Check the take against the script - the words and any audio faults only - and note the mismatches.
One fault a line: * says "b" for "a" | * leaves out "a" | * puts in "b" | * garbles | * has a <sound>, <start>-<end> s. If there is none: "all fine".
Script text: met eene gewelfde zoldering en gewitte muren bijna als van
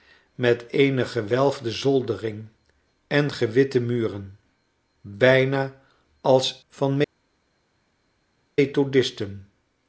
all fine